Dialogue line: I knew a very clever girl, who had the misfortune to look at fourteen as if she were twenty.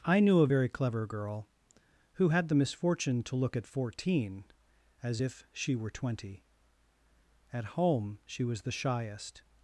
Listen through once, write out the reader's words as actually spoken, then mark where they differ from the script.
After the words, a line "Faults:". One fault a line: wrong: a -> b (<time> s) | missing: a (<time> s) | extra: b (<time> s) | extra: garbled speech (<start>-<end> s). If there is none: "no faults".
I knew a very clever girl, who had the misfortune to look at fourteen as if she were twenty. At home, she was the shyest
Faults:
extra: At home she was the shyest (7.5 s)